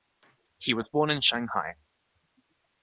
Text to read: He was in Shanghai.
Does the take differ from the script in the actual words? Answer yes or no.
yes